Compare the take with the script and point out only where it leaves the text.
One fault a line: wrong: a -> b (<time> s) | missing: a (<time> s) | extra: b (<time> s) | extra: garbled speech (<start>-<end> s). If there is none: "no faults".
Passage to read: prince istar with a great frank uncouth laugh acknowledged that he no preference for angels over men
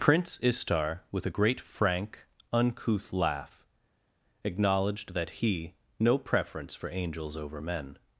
no faults